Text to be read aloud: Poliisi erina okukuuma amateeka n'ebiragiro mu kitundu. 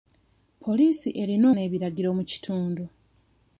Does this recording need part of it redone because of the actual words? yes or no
yes